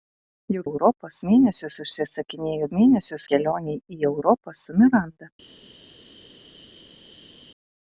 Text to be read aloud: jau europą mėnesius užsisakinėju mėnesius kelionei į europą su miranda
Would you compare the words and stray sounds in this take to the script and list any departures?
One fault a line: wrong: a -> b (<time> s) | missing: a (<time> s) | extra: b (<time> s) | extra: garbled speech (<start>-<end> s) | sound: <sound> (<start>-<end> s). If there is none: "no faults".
no faults